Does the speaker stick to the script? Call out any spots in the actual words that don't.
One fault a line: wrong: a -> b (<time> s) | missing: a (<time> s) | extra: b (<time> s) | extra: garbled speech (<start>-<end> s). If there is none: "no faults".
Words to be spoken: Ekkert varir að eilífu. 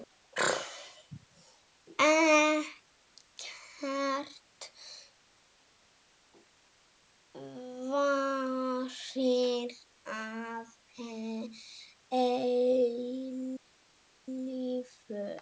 no faults